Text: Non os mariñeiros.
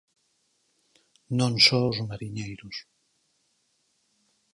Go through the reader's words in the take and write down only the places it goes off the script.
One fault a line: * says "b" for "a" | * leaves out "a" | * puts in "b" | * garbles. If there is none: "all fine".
* puts in "só"